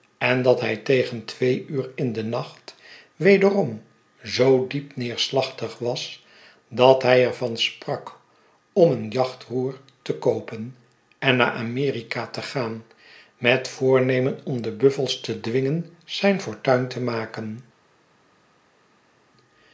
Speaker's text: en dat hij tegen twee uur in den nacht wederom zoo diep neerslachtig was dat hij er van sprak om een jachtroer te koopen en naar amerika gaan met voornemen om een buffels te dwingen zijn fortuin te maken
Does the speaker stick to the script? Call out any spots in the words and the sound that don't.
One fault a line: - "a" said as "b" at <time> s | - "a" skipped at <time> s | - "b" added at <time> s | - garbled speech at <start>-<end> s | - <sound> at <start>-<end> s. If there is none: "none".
- "te" added at 12.3 s
- "een" said as "de" at 14.6 s